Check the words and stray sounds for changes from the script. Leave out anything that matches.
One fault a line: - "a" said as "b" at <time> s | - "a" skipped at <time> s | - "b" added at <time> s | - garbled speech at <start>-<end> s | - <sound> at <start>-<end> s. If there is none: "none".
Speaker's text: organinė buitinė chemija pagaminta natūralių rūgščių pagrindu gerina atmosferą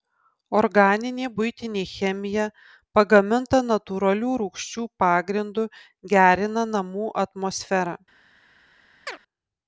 - "namų" added at 6.8 s
- chirp at 9.1-9.2 s